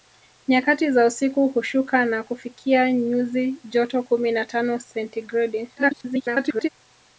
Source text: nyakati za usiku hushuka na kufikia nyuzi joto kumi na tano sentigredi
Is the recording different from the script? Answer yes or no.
yes